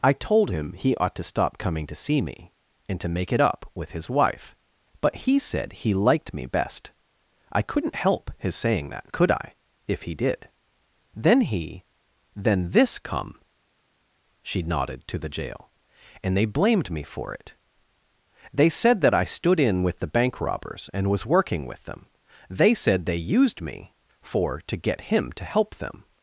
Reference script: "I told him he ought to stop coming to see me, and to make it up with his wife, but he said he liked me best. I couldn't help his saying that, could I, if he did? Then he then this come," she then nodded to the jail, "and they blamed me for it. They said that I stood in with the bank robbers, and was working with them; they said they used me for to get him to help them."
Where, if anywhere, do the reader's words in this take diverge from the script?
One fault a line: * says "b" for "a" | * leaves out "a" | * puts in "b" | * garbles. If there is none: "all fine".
* leaves out "then"